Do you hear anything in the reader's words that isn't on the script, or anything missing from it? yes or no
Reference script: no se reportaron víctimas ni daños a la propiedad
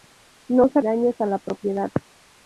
yes